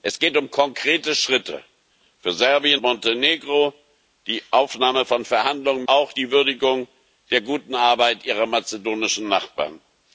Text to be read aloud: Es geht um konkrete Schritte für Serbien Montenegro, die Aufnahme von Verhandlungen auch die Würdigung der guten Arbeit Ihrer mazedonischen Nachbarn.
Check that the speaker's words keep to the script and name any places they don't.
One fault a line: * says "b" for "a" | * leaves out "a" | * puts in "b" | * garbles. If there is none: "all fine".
all fine